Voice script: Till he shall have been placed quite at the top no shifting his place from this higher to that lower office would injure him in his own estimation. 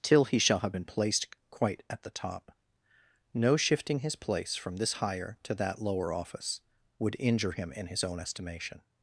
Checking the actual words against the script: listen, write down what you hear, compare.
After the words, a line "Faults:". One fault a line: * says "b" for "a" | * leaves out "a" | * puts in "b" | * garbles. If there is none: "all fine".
Till he shall have been placed quite at the top no shifting his place from this higher to that lower office would injure him in his own estimation.
Faults:
all fine